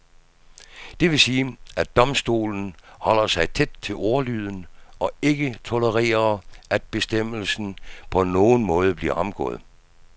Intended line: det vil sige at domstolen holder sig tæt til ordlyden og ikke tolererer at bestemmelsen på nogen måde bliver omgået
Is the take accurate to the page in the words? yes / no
yes